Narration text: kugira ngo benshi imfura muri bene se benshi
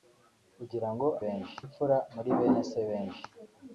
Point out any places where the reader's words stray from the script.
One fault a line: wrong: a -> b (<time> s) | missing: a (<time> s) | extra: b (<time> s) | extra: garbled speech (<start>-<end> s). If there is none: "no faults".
no faults